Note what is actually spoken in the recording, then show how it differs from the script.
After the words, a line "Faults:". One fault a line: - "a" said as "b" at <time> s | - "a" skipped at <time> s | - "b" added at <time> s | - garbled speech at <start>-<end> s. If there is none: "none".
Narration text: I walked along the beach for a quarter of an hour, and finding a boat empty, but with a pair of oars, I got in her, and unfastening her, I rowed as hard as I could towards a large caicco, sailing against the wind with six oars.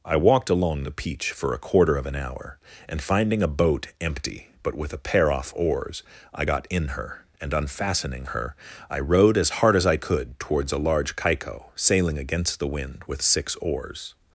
I walked along the peach for a quarter of an hour, and finding a boat empty, but with a pair off oars, I got in her, and unfastening her, I rowed as hard as I could towards a large caicco, sailing against the wind with six oars.
Faults:
- "beach" said as "peach" at 0.9 s
- "of" said as "off" at 5.3 s